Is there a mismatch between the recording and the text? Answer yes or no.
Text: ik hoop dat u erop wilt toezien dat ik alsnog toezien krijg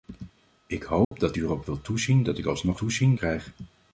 no